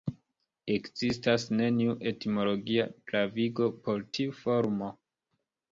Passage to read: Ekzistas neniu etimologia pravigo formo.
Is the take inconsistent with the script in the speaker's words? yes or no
yes